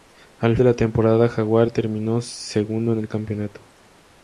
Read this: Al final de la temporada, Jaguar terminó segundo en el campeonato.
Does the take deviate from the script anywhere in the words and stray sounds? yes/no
yes